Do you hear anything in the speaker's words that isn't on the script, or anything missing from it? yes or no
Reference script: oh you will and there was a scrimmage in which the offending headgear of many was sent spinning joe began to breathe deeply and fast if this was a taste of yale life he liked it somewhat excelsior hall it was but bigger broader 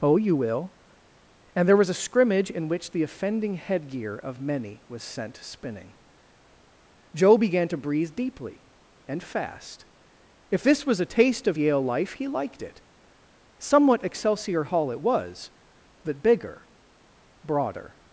no